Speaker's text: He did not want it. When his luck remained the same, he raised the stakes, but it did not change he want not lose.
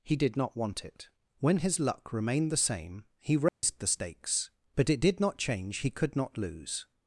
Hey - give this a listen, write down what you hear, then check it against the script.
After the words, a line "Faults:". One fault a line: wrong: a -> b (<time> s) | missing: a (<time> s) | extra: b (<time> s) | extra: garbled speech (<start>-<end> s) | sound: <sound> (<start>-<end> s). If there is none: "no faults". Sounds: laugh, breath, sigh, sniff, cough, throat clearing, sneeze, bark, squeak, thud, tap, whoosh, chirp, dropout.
He did not want it. When his luck remained the same, he raised the stakes, but it did not change he could not lose.
Faults:
sound: dropout (3.5-3.6 s)
wrong: want -> could (5.9 s)